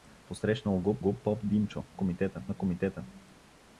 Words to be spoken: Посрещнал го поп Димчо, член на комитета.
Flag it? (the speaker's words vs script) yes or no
yes